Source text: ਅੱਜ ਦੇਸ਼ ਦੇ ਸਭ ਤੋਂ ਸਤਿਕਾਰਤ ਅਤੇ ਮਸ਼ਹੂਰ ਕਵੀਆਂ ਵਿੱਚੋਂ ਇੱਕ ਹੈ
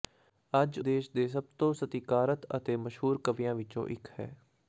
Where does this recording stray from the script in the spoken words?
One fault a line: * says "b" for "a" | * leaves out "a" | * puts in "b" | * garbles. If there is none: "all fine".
all fine